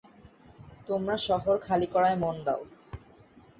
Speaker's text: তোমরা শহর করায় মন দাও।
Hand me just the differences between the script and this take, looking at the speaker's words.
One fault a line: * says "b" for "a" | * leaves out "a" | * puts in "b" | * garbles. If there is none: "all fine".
* puts in "খালি"